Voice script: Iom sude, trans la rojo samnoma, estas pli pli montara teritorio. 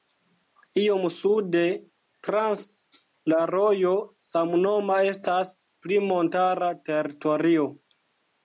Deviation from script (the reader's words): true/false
true